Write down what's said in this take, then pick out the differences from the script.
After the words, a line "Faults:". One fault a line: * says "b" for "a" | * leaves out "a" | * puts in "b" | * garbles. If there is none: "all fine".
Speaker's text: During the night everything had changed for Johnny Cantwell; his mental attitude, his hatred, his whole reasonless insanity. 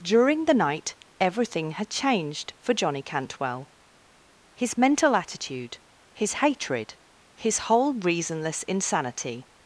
During the night everything had changed for Johnny Cantwell; his mental attitude, his hatred, his whole reasonless insanity.
Faults:
all fine